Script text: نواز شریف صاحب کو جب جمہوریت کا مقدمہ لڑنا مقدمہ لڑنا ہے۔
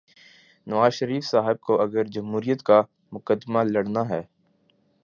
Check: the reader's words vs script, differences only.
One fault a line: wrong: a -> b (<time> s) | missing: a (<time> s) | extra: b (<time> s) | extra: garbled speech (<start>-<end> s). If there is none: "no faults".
wrong: جب -> اگر (1.8 s)
missing: مقدمہ لڑنا (4.1 s)